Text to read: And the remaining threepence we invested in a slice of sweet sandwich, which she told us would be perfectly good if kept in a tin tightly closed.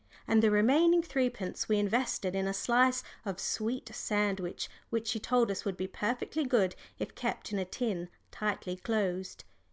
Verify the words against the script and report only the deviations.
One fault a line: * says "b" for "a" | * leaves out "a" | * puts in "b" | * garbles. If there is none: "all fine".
all fine